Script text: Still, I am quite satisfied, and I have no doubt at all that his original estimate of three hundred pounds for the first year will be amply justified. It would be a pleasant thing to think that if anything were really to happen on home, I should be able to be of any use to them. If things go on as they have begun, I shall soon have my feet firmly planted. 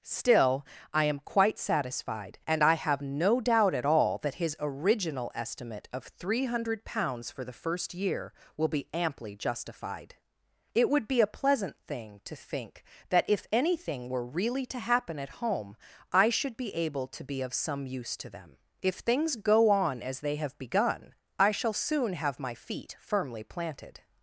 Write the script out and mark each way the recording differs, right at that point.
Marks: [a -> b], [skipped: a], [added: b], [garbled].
Still, I am quite satisfied, and I have no doubt at all that his original estimate of three hundred pounds for the first year will be amply justified. It would be a pleasant thing to think that if anything were really to happen [on -> at] home, I should be able to be of [any -> some] use to them. If things go on as they have begun, I shall soon have my feet firmly planted.